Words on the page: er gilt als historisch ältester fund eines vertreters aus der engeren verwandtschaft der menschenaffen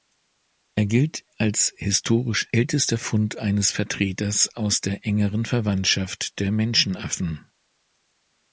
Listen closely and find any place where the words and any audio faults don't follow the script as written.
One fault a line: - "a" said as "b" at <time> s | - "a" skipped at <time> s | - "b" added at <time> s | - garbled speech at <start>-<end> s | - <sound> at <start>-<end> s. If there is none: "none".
none